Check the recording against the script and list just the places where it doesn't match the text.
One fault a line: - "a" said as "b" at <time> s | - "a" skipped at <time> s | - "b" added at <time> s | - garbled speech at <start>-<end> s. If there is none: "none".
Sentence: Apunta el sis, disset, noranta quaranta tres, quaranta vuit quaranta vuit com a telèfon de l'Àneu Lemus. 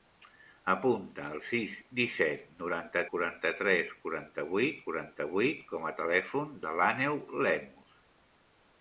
none